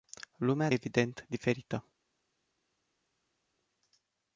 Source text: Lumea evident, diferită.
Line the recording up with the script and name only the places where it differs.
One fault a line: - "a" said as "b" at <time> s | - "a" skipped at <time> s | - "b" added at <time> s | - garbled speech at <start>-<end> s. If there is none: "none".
none